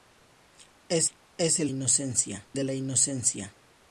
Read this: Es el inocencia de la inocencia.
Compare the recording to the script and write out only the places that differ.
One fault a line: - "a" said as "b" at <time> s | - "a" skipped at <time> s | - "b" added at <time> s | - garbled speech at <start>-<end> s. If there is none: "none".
none